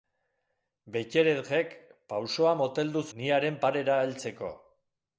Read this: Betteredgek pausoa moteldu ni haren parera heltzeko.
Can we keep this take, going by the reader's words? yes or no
yes